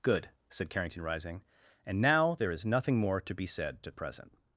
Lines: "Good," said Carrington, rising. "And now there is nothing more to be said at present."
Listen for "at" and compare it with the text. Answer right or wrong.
right